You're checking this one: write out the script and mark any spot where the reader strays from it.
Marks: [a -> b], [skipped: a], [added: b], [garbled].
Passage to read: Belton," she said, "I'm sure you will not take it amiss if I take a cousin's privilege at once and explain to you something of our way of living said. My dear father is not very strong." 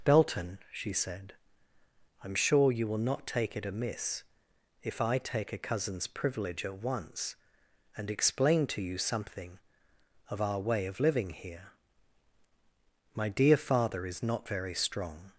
Belton," she said, "I'm sure you will not take it amiss if I take a cousin's privilege at once and explain to you something of our way of living [said. -> here] My dear father is not very strong."